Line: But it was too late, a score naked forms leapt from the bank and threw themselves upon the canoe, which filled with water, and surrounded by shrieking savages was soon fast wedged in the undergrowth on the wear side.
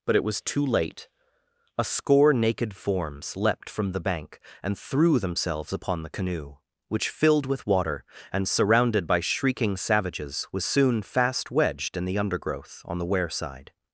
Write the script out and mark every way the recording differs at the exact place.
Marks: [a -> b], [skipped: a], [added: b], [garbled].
But it was too late, a score naked forms leapt from the bank and threw themselves upon the canoe, which filled with water, and surrounded by shrieking savages was soon fast wedged in the undergrowth on the wear side.